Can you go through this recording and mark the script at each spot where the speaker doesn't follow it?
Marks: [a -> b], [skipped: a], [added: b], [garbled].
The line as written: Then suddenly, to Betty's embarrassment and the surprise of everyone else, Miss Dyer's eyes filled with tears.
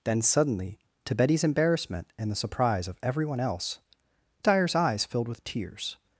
Then suddenly, to Betty's embarrassment and the surprise of everyone else, [skipped: Miss] Dyer's eyes filled with tears.